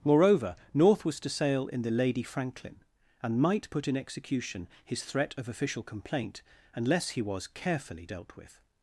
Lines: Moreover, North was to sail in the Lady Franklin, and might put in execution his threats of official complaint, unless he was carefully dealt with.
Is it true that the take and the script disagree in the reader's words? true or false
true